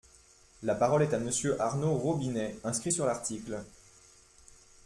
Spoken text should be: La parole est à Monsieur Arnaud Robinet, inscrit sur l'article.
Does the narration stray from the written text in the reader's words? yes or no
no